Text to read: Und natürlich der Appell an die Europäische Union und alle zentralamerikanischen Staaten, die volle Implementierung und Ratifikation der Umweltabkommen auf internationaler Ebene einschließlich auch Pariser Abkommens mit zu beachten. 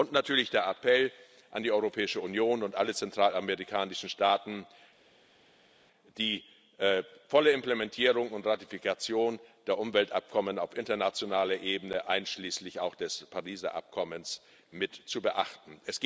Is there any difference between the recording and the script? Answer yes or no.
yes